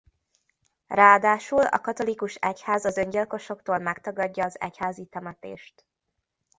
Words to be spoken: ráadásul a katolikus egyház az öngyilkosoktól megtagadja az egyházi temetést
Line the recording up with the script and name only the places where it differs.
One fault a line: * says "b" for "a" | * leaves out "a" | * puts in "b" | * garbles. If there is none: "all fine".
all fine